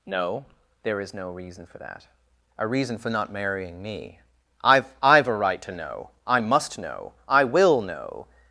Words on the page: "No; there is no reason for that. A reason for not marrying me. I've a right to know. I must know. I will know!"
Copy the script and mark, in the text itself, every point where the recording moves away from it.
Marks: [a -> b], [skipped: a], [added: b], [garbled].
"No; there is no reason for that. A reason for not marrying me. I've [added: I've] a right to know. I must know. I will know!"